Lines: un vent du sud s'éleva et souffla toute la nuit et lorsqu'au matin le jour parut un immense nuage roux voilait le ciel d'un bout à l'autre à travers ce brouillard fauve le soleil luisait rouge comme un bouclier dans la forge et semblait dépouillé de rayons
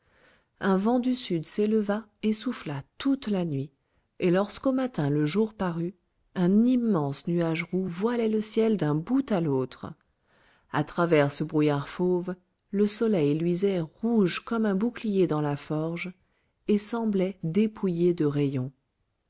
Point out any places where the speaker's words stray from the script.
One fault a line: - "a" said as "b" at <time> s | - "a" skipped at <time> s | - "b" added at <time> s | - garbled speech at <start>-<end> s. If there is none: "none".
none